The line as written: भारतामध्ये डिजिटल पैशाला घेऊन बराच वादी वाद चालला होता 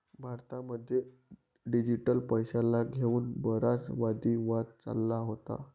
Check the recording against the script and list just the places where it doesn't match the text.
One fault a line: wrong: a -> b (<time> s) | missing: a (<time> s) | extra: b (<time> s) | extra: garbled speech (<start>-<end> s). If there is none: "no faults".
no faults